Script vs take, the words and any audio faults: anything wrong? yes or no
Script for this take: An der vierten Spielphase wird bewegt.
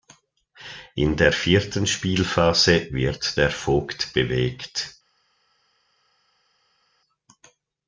yes